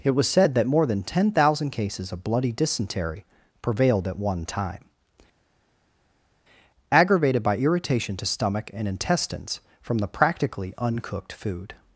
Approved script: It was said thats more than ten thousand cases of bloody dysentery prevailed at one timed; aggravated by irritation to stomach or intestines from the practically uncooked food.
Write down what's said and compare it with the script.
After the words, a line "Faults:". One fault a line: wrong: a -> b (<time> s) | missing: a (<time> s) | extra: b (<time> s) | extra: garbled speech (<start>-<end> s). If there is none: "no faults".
It was said that more than ten thousand cases of bloody dysentery prevailed at one time; aggravated by irritation to stomach and intestines from the practically uncooked food.
Faults:
wrong: thats -> that (0.6 s)
wrong: timed -> time (4.5 s)
wrong: or -> and (8.7 s)